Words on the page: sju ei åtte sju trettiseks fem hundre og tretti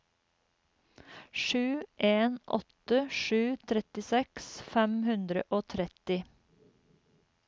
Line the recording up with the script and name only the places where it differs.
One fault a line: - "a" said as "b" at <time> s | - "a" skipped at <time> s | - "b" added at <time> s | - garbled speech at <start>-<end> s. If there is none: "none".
- "ei" said as "en" at 2.0 s